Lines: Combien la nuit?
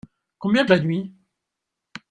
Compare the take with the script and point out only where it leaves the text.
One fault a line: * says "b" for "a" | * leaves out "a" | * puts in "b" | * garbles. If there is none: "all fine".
all fine